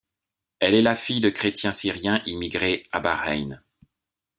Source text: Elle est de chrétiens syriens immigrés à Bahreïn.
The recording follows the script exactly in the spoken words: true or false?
false